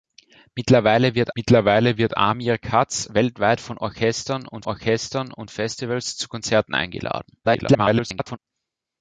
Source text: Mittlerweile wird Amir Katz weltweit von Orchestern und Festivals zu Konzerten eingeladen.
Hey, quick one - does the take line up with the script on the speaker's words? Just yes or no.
no